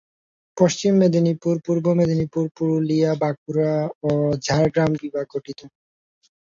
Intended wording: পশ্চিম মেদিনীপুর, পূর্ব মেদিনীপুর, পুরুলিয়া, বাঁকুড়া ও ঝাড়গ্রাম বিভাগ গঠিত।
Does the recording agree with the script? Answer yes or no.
yes